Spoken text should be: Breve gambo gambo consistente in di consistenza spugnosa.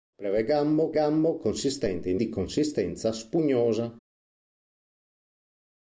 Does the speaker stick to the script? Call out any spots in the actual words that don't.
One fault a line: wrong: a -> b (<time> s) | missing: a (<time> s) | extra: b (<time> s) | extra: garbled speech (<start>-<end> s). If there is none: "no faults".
no faults